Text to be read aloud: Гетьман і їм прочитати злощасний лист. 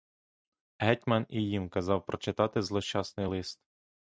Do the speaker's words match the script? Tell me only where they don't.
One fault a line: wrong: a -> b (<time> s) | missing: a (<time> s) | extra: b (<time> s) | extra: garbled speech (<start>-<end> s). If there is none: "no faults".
extra: казав (1.7 s)